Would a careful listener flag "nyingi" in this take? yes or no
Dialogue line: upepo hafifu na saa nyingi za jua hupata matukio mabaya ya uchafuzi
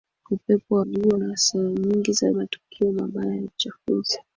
no